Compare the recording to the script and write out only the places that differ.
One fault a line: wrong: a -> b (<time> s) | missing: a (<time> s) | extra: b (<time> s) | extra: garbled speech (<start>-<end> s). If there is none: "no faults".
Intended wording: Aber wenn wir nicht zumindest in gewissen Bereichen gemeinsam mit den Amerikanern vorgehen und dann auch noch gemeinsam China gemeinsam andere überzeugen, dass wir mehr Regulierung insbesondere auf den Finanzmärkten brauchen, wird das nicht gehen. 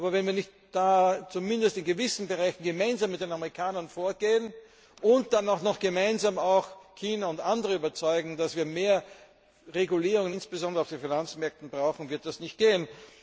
wrong: gemeinsam -> und (7.3 s)